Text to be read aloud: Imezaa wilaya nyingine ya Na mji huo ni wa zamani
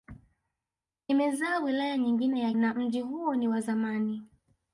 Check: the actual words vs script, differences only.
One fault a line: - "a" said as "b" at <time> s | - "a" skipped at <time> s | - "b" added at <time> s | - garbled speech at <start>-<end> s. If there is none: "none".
none